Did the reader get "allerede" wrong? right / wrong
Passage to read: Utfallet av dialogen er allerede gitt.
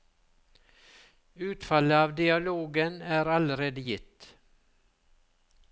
right